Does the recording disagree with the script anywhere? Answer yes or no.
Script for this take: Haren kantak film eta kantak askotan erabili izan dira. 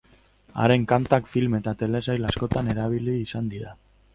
yes